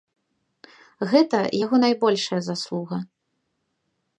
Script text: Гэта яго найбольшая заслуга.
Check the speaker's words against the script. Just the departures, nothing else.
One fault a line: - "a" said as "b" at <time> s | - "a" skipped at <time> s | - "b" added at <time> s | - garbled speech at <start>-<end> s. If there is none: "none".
none